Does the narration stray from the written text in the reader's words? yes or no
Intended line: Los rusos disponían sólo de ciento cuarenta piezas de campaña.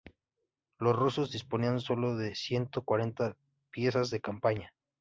no